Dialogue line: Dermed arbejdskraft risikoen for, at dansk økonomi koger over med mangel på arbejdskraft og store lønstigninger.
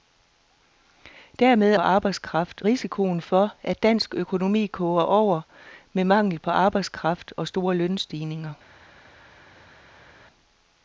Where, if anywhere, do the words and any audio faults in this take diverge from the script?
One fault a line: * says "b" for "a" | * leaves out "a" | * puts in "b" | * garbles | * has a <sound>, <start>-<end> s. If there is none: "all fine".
all fine